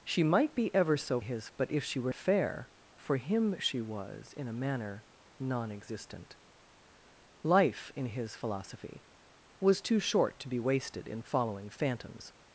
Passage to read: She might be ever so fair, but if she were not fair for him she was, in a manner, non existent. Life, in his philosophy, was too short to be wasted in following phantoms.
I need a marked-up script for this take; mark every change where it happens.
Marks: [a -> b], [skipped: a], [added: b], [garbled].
She might be ever so [fair, -> his] but if she were [skipped: not] fair for him she was, in a manner, non existent. Life, in his philosophy, was too short to be wasted in following phantoms.